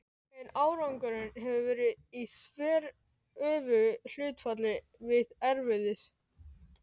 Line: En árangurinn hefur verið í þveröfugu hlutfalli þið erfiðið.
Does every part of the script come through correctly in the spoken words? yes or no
no